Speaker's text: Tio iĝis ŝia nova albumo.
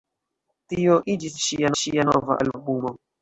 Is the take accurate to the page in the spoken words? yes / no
no